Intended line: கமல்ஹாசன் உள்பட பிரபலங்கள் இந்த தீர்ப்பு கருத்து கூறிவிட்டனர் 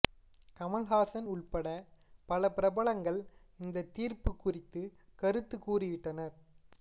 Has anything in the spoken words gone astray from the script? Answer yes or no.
yes